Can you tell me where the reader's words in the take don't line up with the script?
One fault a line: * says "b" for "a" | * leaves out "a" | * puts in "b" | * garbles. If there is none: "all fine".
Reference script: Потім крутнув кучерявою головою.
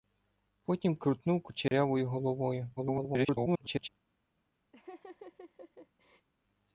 * garbles